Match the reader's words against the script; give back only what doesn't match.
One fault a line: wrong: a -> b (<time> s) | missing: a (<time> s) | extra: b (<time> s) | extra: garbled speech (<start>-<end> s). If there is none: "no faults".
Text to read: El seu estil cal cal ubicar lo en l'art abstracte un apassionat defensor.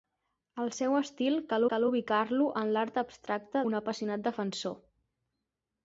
no faults